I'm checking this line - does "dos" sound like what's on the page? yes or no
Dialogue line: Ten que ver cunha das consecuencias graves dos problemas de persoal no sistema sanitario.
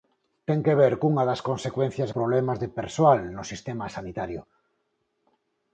no